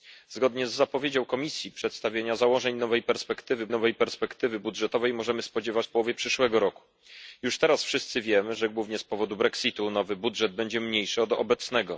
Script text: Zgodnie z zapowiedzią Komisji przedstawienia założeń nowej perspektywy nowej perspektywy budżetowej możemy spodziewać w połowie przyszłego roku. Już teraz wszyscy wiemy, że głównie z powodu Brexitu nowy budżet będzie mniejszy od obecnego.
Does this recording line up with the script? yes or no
yes